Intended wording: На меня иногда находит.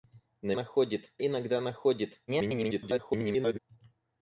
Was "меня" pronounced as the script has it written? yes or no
no